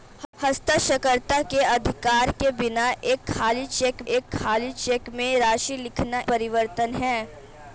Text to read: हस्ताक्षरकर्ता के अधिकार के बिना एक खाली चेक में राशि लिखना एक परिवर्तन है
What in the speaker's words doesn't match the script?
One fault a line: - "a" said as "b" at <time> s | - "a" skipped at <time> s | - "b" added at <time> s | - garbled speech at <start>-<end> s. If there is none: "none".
- "एक खाली चेक" added at 4.1 s
- "एक" skipped at 6.2 s